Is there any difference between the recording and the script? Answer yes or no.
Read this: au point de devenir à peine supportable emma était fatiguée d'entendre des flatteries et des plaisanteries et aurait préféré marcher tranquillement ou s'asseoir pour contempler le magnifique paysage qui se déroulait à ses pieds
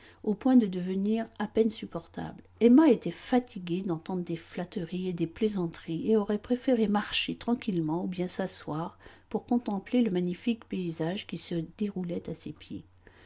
yes